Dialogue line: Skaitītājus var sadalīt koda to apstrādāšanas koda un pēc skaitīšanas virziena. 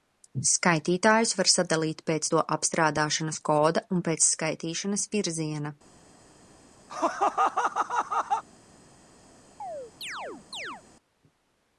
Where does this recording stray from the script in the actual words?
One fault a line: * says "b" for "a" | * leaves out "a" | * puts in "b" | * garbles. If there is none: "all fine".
* says "pēc" for "koda"